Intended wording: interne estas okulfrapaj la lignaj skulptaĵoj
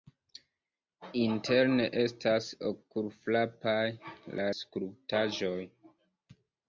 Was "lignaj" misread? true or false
true